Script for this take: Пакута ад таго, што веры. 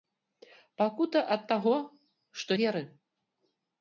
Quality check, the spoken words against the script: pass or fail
pass